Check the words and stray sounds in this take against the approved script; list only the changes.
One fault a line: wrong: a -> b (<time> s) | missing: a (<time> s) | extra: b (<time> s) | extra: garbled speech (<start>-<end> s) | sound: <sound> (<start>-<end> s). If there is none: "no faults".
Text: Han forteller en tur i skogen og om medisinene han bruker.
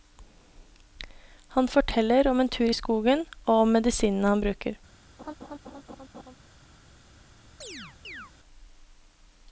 extra: om (2.3 s)
sound: laugh (5.2-6.4 s)
sound: chirp (7.6-8.3 s)